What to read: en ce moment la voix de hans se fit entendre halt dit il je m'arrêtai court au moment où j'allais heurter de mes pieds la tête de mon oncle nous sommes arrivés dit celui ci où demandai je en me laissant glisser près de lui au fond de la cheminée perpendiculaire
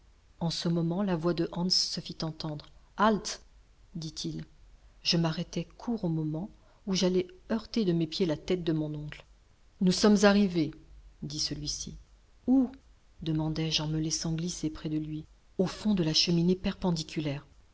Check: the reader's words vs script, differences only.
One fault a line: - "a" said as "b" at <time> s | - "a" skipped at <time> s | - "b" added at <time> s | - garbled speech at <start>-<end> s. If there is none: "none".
none